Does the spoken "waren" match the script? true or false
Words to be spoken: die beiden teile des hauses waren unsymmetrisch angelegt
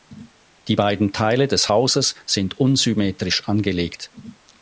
false